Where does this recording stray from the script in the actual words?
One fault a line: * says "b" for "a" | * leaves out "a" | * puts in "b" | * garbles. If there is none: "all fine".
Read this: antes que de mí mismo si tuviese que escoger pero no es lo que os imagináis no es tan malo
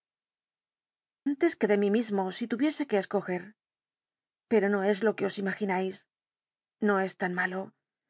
all fine